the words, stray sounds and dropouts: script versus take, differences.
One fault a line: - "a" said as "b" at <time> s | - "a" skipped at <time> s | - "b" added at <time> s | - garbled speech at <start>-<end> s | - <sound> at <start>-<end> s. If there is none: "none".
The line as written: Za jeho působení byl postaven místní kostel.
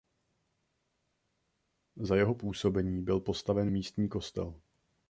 none